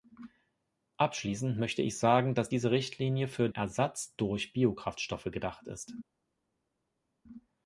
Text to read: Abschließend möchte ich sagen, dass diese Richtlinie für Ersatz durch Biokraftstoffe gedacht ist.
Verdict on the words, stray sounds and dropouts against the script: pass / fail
pass